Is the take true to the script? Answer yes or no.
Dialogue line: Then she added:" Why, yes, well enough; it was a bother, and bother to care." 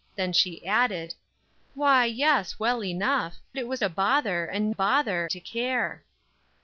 yes